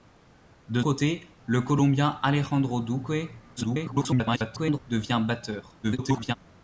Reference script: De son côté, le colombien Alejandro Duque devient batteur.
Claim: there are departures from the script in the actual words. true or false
true